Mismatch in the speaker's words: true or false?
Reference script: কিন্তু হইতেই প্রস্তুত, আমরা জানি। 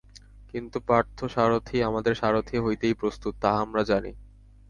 true